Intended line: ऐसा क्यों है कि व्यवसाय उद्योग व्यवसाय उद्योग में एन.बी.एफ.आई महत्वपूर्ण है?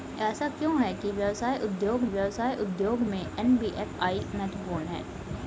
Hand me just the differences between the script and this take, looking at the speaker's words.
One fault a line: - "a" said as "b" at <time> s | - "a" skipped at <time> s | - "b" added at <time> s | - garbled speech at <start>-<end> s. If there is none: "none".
none